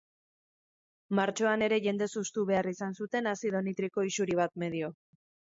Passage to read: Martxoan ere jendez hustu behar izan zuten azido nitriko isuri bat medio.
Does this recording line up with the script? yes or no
yes